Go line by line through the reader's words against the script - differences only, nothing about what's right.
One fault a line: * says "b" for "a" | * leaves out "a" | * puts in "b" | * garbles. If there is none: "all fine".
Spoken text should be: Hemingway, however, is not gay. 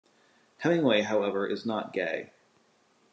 all fine